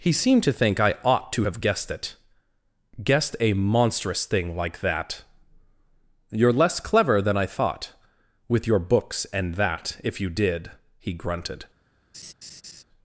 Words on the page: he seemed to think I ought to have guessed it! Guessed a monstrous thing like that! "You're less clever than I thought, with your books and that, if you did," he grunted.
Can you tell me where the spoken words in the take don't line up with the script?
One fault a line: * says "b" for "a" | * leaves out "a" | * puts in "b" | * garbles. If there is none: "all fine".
all fine